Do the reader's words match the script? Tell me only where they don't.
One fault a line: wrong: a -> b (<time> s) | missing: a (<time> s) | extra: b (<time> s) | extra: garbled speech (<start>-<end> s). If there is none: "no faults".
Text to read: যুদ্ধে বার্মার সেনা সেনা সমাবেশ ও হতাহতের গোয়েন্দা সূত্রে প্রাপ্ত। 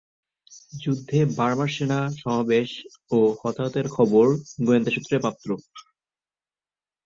missing: সেনা (2.0 s)
extra: খবর (4.0 s)